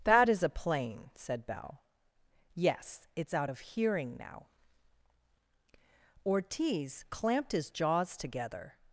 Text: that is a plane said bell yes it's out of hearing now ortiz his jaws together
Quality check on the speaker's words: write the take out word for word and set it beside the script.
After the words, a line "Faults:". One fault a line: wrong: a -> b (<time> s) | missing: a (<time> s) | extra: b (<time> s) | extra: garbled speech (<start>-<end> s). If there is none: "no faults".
that is a plane said bell yes it's out of hearing now ortiz clamped his jaws together
Faults:
extra: clamped (7.1 s)